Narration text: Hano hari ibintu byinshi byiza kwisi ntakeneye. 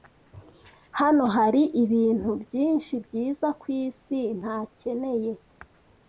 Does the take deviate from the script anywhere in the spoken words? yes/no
no